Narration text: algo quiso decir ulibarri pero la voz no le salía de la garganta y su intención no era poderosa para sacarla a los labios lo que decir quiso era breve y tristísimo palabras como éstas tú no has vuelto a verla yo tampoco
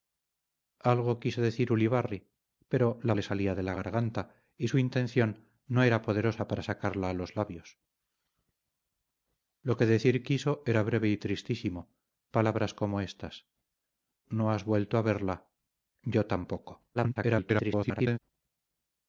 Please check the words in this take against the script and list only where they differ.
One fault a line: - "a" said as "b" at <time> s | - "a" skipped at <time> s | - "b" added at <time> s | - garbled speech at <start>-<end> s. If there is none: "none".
- "voz no" skipped at 3.1 s
- "tú" skipped at 13.5 s
- garbled speech at 16.9-18.2 s